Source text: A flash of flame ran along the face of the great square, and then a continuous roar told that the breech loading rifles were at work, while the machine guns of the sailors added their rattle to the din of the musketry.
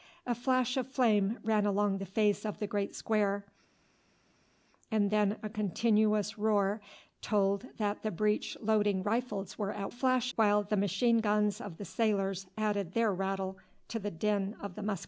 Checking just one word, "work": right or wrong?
wrong